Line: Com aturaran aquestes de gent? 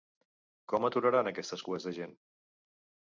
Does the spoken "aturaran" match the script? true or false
true